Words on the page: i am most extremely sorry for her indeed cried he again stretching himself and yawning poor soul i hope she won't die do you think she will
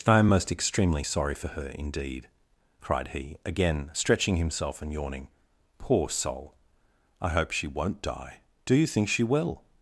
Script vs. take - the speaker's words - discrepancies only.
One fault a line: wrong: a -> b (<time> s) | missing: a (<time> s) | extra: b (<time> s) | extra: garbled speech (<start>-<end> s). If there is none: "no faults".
no faults